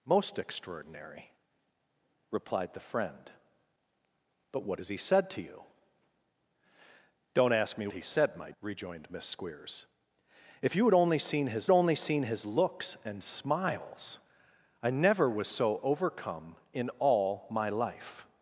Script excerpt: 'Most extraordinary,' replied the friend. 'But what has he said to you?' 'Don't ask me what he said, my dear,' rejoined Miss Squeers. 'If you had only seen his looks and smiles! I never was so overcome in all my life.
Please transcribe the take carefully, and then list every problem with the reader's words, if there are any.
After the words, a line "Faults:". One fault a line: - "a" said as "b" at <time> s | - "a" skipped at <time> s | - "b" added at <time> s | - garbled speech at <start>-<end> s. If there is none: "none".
'Most extraordinary,' replied the friend. 'But what has he said to you?' 'Don't ask me he said, my,' rejoined Miss Squeers. 'If you had only seen his only seen his looks and smiles! I never was so overcome in all my life.
Faults:
- "what" skipped at 7.9 s
- "dear" skipped at 8.5 s
- "only seen his" added at 11.7 s